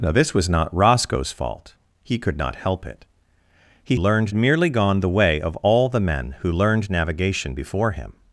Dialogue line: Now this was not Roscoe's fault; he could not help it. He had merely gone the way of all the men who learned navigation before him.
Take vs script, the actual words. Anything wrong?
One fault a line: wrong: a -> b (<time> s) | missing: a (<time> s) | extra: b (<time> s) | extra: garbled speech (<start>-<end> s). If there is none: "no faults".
wrong: had -> learned (4.0 s)